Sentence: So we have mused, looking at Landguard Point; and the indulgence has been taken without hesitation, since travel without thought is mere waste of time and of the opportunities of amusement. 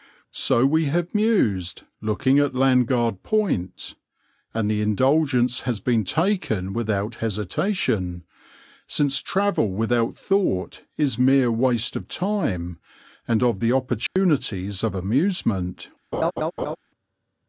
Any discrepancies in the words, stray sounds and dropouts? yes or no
yes